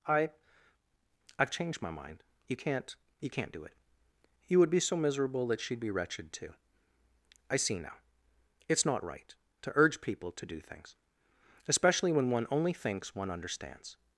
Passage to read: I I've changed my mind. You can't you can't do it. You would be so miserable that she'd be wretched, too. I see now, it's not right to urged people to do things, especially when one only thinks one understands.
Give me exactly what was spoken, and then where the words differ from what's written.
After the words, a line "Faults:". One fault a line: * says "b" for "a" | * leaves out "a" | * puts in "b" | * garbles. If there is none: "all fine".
I I've changed my mind. You can't you can't do it. You would be so miserable that she'd be wretched, too. I see now, it's not right to urge people to do things, especially when one only thinks one understands.
Faults:
* says "urge" for "urged"